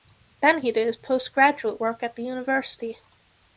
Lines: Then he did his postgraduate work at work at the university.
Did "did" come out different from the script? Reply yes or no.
no